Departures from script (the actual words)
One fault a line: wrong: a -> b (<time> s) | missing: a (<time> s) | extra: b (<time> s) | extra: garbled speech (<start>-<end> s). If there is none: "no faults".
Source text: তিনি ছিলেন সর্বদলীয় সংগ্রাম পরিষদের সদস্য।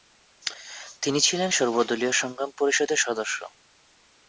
no faults